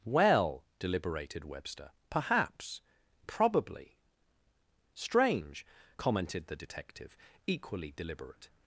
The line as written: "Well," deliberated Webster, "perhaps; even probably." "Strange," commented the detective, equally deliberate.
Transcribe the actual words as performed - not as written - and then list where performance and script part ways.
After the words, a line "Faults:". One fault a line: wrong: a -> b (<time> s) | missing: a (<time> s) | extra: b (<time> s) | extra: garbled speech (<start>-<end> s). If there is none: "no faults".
"Well," deliberated Webster, "perhaps; probably." "Strange," commented the detective, equally deliberate.
Faults:
missing: even (2.8 s)